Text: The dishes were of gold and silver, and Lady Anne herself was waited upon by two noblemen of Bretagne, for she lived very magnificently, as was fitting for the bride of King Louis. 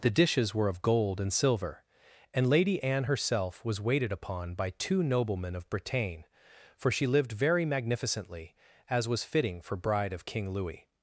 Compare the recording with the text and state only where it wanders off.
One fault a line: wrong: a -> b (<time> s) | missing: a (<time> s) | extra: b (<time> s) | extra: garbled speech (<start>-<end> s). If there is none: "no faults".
missing: the (9.8 s)